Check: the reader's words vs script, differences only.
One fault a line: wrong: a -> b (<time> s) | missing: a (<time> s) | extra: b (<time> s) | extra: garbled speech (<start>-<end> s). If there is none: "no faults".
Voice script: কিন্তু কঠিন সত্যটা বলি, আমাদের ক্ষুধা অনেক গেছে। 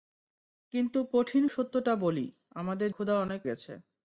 no faults